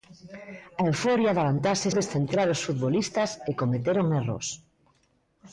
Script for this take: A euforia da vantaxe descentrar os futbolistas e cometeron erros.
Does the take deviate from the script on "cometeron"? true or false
false